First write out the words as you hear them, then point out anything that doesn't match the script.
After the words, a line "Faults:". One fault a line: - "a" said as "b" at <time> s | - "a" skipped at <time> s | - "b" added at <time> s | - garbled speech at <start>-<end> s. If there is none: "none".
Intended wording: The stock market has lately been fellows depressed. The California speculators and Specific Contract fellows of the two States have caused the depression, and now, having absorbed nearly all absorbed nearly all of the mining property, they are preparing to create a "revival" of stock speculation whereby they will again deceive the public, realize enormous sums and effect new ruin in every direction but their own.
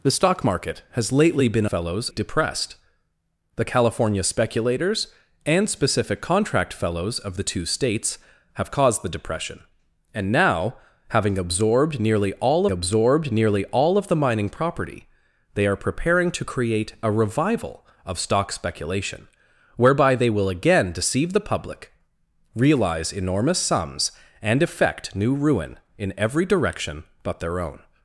The stock market has lately been fellows depressed. The California speculators and Specific Contract fellows of the two States have caused the depression, and now, having absorbed nearly all absorbed nearly all of the mining property, they are preparing to create a "revival" of stock speculation whereby they will again deceive the public, realize enormous sums and effect new ruin in every direction but their own.
Faults:
none